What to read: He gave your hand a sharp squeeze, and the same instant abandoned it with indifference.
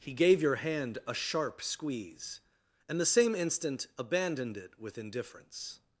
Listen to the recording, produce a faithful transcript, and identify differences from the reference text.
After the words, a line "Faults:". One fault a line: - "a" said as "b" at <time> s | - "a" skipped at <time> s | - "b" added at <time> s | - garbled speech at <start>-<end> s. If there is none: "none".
He gave your hand a sharp squeeze, and the same instant abandoned it with indifference.
Faults:
none